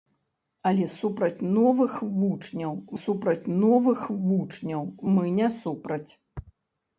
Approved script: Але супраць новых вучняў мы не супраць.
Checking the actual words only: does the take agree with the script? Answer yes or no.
no